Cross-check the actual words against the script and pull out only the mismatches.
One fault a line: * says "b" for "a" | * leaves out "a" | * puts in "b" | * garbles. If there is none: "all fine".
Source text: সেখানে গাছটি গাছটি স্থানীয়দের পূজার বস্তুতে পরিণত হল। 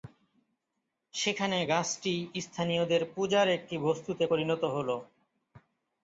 * leaves out "গাছটি"
* puts in "একটি"